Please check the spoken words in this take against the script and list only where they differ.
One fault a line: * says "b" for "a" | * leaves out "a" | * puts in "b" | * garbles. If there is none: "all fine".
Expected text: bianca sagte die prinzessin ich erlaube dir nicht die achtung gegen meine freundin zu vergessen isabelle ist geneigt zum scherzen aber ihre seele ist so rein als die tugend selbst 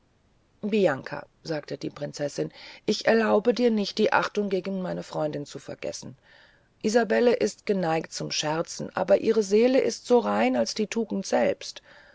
all fine